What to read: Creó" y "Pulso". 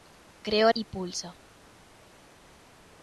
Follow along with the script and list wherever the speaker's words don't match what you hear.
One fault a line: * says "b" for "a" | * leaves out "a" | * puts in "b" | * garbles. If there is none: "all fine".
all fine